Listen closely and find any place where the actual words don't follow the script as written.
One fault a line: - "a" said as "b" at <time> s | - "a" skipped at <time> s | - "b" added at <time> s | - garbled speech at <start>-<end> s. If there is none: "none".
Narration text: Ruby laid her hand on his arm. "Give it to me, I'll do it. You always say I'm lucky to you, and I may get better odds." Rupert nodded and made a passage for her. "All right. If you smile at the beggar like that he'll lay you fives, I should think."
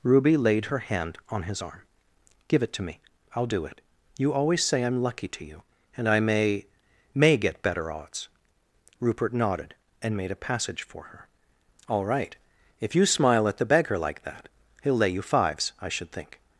- "may" added at 7.2 s